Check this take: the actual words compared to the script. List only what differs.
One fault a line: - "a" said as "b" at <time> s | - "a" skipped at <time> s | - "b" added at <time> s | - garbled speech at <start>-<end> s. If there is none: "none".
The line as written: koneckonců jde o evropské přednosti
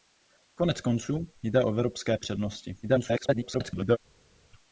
- garbled speech at 2.8-4.0 s